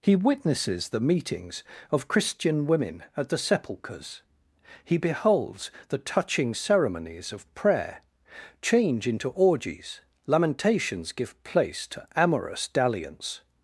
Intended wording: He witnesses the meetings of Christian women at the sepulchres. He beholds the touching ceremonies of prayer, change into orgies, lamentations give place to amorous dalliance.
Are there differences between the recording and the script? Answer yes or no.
no